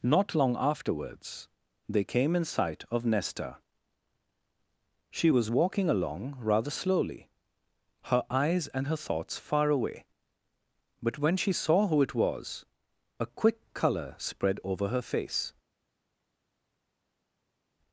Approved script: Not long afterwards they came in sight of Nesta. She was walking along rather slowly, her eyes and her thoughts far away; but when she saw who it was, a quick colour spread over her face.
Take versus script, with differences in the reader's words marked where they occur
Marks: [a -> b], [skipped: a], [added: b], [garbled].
Not long afterwards they came in sight of Nesta. She was walking along rather slowly, her eyes and her thoughts far away; but when she saw who it was, a quick colour spread over her face.